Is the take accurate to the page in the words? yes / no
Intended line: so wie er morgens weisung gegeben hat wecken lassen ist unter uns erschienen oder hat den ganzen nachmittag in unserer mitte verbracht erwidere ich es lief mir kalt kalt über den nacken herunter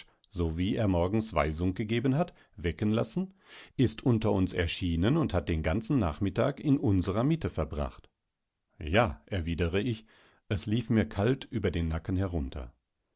no